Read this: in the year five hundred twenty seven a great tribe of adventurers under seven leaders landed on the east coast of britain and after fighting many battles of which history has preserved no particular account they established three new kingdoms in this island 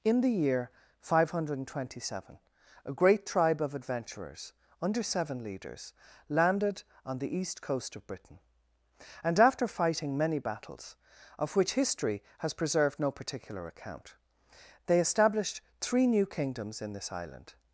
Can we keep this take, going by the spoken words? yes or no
yes